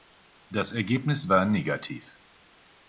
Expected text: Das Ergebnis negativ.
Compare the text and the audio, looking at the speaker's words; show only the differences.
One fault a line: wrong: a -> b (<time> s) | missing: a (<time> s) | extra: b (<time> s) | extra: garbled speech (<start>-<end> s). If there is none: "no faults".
extra: war (1.3 s)